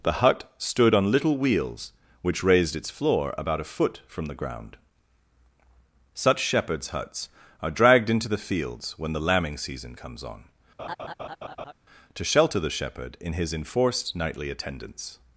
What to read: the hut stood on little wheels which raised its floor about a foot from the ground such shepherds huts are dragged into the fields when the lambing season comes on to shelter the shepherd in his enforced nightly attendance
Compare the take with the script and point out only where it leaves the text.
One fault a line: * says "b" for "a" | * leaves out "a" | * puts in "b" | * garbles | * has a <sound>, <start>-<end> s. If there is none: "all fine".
* has a laugh, 10.8-11.7 s